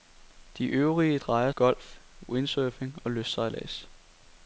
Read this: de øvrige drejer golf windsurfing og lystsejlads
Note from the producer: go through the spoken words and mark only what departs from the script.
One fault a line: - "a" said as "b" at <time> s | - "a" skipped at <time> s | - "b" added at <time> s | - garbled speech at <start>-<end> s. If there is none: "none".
none